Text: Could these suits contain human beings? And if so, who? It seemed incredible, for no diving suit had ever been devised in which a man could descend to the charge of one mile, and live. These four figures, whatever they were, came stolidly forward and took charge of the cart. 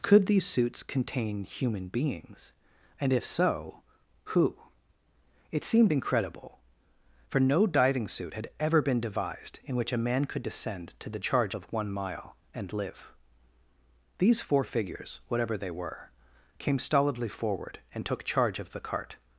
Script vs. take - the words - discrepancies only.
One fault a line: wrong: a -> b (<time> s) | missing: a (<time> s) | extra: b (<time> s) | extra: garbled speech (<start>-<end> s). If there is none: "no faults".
no faults